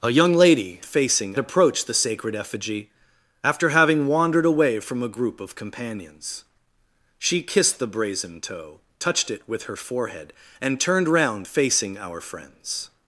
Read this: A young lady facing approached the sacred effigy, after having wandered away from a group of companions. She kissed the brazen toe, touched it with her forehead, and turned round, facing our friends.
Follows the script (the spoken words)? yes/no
yes